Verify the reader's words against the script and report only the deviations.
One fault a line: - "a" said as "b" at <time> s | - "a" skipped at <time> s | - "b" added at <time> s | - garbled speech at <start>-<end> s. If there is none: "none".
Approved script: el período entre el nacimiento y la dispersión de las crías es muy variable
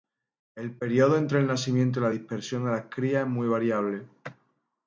none